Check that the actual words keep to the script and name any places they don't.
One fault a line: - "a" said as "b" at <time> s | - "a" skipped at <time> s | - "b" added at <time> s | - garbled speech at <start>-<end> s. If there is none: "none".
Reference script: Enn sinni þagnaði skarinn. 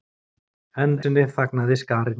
none